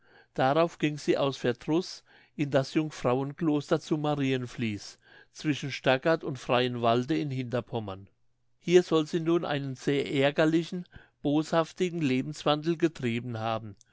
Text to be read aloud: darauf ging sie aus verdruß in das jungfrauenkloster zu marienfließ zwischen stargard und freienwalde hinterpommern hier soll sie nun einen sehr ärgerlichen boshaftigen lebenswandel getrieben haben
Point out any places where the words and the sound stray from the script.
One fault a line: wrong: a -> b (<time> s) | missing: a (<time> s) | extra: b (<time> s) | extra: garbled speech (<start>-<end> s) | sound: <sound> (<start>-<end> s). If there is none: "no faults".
extra: in (7.2 s)